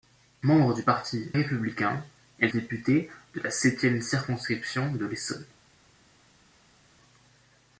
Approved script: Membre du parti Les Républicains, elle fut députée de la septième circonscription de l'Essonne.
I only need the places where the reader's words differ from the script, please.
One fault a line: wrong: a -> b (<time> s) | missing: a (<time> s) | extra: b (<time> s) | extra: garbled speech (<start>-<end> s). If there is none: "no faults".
missing: Les (1.3 s)
missing: fut (2.5 s)